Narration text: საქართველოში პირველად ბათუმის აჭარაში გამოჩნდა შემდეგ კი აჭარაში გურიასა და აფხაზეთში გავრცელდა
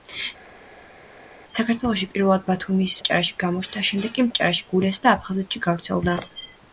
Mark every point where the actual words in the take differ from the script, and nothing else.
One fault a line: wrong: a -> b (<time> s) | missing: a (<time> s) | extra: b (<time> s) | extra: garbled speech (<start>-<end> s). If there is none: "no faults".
no faults